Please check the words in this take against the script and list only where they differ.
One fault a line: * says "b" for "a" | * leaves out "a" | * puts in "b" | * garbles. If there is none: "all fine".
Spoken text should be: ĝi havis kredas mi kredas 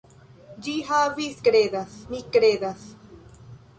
all fine